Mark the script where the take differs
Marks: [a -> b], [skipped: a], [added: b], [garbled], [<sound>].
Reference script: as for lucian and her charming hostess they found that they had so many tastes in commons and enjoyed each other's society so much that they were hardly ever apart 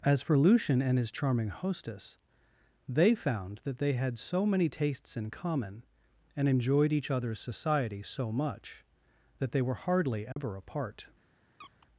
as for lucian and [her -> his] charming hostess they found that they had so many tastes in [commons -> common] and enjoyed each other's society so much that they were hardly ever [dropout] apart [squeak]